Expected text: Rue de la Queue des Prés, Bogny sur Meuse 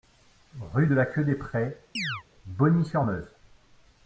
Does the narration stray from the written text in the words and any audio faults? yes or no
yes